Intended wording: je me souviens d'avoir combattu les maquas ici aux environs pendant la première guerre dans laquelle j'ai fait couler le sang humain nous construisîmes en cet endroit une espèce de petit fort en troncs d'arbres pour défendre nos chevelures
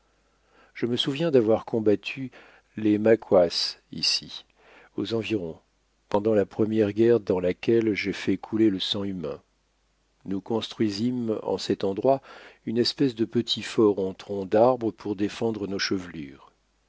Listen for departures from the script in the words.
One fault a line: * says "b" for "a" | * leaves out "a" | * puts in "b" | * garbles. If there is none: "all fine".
all fine